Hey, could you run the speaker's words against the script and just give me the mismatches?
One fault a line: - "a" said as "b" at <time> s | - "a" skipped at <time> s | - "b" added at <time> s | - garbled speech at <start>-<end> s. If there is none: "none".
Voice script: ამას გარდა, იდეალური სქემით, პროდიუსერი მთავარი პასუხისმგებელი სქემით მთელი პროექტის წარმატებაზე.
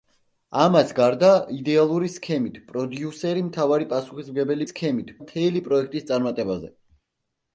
none